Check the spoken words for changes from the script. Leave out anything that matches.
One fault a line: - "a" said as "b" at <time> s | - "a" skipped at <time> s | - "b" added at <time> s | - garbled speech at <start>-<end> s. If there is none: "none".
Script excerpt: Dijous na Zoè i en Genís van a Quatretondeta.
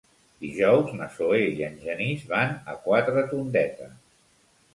none